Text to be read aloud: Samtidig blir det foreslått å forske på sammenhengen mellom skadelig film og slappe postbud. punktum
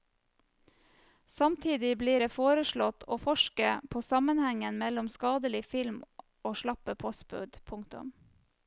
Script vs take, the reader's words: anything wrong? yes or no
no